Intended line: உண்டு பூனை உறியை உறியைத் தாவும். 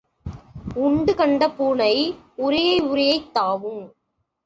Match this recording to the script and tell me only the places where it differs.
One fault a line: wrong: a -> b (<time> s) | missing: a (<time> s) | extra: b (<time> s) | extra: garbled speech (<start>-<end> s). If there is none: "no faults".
extra: கண்ட (1.1 s)